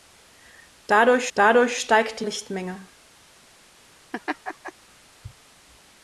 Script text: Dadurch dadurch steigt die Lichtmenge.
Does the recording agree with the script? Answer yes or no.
yes